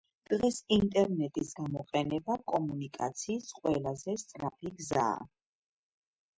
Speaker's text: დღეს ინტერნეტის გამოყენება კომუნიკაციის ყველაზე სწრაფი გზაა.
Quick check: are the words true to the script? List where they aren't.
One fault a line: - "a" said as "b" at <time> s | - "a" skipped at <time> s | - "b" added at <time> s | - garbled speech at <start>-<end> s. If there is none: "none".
none